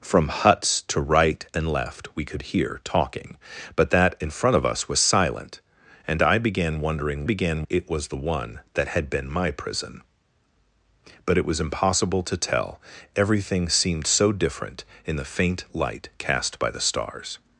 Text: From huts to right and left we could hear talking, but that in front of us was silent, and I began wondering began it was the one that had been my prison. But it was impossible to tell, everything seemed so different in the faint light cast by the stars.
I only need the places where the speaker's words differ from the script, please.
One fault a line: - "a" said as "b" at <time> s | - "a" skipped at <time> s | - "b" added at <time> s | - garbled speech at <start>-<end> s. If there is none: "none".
none